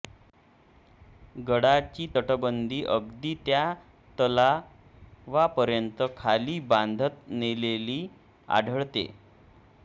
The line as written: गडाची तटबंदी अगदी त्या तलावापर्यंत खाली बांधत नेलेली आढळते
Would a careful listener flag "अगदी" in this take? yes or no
no